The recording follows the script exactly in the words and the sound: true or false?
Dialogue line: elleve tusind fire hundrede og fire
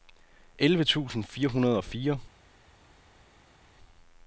true